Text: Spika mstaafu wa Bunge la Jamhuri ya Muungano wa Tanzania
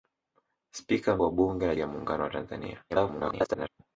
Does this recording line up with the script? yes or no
no